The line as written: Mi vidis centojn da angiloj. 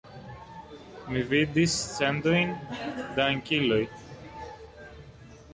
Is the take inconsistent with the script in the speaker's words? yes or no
no